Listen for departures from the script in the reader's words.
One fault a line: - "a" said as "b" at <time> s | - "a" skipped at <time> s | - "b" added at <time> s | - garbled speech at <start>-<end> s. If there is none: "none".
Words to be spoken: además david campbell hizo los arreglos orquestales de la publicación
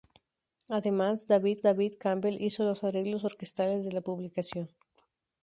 - "david" added at 1.6 s